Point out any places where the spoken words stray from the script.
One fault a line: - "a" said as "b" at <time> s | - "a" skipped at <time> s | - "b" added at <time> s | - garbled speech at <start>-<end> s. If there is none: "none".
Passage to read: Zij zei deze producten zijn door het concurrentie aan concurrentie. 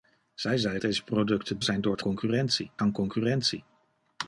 none